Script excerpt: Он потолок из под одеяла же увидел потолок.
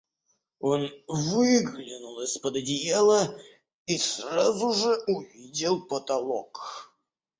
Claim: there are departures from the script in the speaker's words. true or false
true